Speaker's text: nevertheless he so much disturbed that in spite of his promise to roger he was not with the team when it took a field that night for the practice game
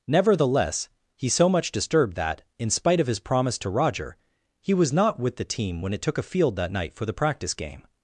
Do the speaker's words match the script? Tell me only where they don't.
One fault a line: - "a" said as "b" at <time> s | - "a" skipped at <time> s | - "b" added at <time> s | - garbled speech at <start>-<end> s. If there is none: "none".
none